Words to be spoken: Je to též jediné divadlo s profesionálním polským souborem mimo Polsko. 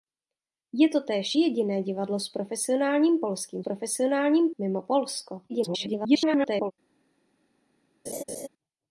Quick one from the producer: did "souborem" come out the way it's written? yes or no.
no